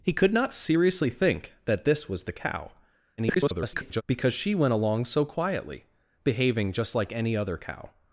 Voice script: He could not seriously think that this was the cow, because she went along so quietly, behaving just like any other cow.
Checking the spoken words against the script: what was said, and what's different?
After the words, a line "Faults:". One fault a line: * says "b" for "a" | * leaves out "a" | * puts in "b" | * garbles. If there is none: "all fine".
He could not seriously think that this was the cow, [garbled] because she went along so quietly, behaving just like any other cow.
Faults:
* garbles